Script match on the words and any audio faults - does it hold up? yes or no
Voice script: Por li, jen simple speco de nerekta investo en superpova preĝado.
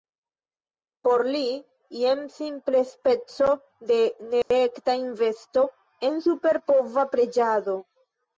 no